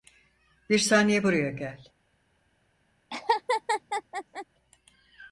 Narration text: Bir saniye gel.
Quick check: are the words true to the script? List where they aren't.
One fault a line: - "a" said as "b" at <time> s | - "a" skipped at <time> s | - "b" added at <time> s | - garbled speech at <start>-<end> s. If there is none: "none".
- "buraya" added at 1.2 s